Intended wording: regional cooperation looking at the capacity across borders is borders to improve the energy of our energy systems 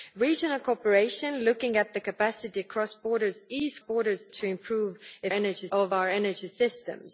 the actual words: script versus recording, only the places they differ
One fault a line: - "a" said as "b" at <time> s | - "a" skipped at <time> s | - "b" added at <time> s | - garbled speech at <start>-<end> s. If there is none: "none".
none